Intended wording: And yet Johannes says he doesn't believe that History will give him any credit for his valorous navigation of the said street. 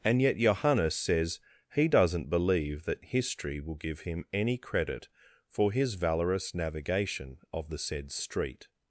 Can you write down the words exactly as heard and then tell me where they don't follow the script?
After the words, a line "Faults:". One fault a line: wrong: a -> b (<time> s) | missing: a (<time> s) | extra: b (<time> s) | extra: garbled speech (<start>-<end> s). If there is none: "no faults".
And yet Johannes says he doesn't believe that History will give him any credit for his valorous navigation of the said street.
Faults:
no faults